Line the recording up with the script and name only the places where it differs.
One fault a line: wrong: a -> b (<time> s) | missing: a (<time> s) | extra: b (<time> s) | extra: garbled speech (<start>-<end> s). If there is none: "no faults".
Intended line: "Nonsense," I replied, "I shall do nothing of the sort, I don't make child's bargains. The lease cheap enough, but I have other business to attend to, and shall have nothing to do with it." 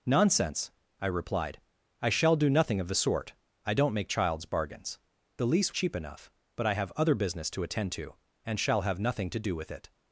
no faults